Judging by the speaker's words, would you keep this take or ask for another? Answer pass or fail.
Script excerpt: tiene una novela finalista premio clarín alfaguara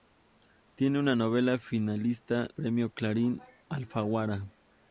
pass